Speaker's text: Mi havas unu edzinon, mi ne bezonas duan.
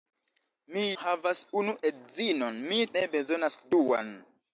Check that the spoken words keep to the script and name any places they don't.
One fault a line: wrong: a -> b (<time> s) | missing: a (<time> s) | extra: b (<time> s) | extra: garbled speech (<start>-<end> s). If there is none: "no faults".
no faults